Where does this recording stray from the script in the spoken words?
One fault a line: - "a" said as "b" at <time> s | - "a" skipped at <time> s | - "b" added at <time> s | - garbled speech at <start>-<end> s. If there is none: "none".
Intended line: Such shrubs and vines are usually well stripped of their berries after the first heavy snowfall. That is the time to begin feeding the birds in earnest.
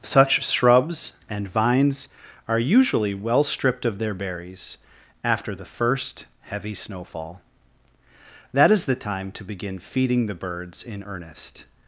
none